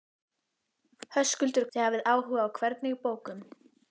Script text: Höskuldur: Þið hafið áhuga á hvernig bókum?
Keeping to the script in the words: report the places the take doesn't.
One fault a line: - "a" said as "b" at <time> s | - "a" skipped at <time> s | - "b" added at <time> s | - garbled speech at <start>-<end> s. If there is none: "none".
none